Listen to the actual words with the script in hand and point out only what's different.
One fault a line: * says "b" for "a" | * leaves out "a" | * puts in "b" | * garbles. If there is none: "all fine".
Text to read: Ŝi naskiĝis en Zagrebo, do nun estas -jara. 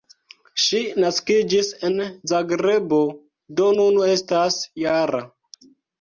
all fine